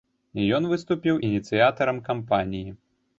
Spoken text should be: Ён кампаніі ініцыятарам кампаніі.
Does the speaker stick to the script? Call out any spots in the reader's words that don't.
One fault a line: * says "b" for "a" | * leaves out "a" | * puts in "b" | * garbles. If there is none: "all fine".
* says "выступіў" for "кампаніі"